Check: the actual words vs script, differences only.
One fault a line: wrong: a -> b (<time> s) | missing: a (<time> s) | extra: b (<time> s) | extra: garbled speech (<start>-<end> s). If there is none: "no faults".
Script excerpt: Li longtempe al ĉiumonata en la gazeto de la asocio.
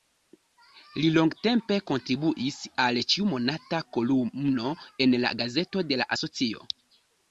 extra: kontribuis (1.9 s)
extra: kolumno (4.0 s)